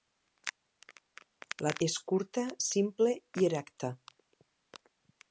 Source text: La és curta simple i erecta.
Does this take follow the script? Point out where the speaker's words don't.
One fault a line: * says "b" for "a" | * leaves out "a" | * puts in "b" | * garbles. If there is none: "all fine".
all fine